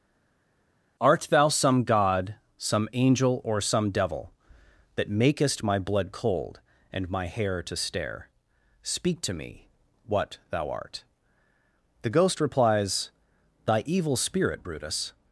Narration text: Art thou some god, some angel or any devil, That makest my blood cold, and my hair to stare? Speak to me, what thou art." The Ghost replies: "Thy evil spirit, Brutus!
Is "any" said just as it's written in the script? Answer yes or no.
no